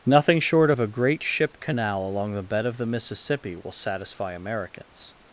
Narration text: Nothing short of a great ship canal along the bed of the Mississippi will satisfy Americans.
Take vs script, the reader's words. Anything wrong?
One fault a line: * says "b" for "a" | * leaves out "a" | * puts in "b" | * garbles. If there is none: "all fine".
all fine